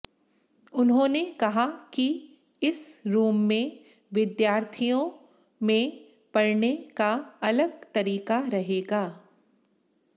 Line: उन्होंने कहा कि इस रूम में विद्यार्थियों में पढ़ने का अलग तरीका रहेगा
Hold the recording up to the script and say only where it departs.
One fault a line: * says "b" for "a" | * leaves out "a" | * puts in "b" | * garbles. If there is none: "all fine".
all fine